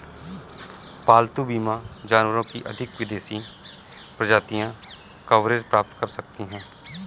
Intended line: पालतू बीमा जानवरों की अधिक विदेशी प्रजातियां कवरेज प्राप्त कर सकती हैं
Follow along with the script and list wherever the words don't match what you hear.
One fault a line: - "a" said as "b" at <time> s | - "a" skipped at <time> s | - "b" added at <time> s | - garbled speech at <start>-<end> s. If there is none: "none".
none